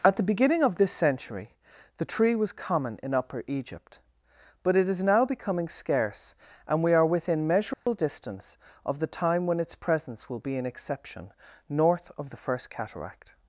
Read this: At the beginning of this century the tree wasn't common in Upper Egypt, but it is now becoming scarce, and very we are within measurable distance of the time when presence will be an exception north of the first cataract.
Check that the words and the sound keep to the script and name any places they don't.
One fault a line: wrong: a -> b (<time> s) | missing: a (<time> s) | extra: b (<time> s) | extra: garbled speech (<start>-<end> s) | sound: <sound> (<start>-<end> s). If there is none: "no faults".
wrong: wasn't -> was (2.3 s)
missing: very (6.8 s)
sound: dropout (7.7-7.9 s)
extra: its (9.6 s)